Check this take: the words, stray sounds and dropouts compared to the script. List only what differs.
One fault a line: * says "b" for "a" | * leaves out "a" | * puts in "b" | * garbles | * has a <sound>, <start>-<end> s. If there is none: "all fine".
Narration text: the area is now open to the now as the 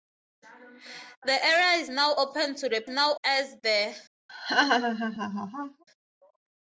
* has a laugh, 4.3-5.8 s